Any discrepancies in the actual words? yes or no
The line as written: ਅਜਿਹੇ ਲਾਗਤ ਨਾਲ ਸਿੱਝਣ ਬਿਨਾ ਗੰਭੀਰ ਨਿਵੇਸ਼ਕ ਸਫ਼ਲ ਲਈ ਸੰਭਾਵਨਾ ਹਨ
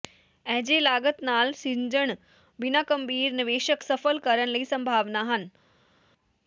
yes